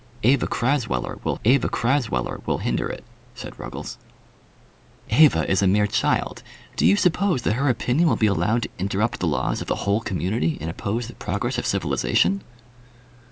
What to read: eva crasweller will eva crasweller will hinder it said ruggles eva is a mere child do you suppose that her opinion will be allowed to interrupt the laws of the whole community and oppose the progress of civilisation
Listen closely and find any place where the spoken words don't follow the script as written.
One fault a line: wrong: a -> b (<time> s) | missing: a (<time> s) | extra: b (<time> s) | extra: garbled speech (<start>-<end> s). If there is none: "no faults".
no faults